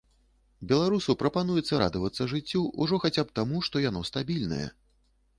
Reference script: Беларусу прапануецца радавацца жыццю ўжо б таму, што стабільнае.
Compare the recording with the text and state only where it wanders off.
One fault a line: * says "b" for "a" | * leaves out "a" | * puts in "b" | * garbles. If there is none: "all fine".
* puts in "хаця"
* puts in "яно"